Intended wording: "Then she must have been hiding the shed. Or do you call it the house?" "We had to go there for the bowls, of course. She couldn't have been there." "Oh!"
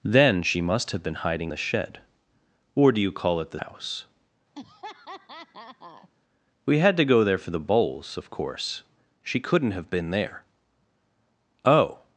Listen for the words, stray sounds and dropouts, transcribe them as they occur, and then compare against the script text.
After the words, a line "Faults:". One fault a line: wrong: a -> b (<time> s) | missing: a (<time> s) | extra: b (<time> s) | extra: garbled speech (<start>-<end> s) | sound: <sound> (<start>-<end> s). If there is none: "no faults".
"Then she must have been hiding the shed. Or do you call it the house?" "We had to go there for the bowls, of course. She couldn't have been there." "Oh!"
Faults:
sound: laugh (4.6-6.1 s)